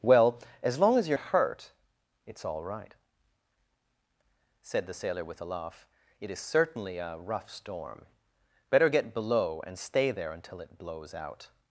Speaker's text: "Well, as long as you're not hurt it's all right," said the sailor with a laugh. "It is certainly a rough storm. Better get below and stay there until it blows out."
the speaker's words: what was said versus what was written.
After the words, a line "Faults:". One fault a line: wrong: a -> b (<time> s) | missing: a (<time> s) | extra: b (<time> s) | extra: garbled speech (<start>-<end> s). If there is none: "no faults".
"Well, as long as you're hurt it's all right," said the sailor with a laugh. "It is certainly a rough storm. Better get below and stay there until it blows out."
Faults:
missing: not (1.2 s)